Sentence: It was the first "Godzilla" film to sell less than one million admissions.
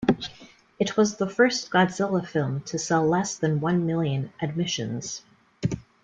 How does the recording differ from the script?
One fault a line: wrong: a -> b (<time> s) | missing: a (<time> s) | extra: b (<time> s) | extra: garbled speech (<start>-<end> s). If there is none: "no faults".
no faults